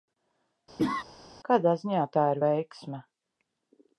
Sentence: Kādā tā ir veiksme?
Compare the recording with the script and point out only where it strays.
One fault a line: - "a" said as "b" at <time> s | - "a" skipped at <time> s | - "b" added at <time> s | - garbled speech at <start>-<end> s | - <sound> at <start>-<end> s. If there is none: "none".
- cough at 0.8-1.0 s
- "ziņā" added at 1.8 s